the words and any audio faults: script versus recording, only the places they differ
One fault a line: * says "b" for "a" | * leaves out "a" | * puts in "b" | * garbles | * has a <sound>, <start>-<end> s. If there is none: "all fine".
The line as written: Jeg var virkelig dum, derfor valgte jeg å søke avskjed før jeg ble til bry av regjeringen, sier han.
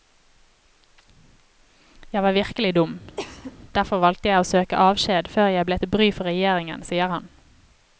* has a cough, 3.2-3.6 s
* says "for" for "av"